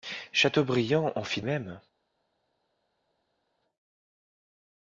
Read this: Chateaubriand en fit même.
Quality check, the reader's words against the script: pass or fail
pass